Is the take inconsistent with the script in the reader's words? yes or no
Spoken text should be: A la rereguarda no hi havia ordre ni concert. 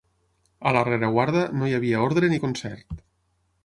no